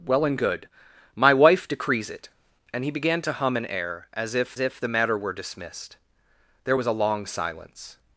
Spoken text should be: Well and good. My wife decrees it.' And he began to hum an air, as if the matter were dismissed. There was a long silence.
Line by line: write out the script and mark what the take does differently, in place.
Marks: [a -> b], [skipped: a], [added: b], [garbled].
Well and good. My wife decrees it.' And he began to hum an air, as if [added: if] the matter were dismissed. There was a long silence.